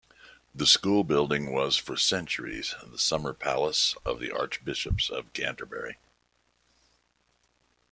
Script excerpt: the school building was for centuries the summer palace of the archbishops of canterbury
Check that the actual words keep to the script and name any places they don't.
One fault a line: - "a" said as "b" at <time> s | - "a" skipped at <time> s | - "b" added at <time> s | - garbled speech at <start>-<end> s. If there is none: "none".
none